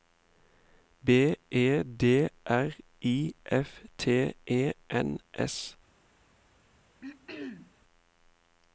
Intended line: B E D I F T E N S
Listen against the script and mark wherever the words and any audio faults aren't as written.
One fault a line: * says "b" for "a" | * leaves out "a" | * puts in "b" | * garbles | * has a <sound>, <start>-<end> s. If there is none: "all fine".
* puts in "R"
* has a throat clearing, 7.0-7.7 s